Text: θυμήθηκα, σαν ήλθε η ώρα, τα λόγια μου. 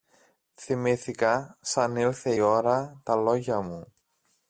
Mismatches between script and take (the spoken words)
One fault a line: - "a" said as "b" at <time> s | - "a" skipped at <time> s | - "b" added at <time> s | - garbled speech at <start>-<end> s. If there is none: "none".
- "η" skipped at 2.3 s